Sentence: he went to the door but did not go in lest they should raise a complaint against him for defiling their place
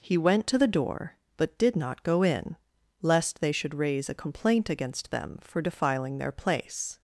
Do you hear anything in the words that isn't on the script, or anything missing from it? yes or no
yes